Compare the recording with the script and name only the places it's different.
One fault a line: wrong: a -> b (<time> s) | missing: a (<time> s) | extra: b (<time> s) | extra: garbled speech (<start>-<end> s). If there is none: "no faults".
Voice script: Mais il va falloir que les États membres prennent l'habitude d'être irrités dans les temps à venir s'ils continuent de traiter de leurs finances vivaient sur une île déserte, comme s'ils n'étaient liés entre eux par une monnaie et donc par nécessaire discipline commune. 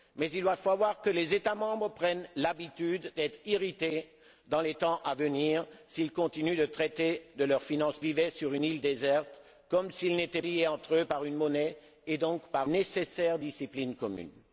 no faults